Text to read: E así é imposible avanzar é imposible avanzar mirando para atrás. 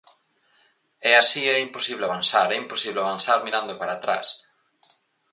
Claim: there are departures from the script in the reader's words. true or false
false